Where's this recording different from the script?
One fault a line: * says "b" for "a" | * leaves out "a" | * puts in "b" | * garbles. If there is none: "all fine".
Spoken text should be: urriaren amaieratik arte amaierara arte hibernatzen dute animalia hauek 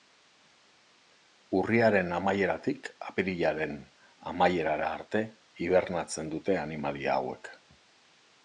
* says "apirilaren" for "arte"